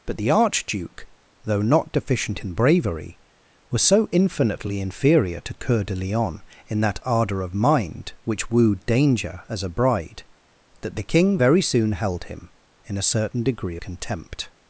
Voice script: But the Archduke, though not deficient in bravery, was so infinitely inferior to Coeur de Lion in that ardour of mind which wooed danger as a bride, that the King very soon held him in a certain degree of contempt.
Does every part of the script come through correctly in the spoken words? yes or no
no